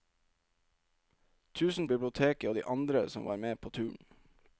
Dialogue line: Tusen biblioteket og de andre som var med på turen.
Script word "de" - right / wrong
right